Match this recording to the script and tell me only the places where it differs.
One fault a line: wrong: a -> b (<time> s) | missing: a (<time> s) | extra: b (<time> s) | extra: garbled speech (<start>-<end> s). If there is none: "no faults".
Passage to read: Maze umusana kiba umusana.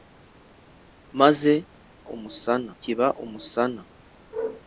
no faults